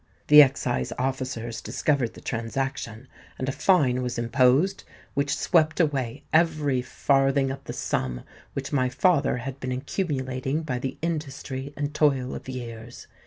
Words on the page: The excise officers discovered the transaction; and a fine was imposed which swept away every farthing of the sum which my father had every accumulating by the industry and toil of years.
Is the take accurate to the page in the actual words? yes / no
no